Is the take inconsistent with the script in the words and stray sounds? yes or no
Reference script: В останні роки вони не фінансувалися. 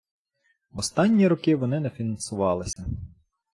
yes